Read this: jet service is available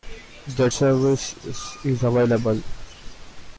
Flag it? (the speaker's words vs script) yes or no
no